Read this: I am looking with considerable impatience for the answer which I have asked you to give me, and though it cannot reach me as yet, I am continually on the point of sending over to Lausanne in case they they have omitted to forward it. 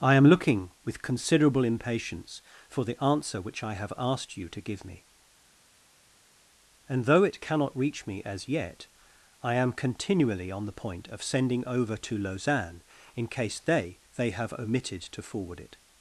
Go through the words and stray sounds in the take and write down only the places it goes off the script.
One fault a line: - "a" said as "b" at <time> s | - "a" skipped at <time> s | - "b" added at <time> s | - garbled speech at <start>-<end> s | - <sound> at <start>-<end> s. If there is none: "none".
none